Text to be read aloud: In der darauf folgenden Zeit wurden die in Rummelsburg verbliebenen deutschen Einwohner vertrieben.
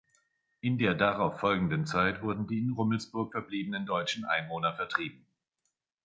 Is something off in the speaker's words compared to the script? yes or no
no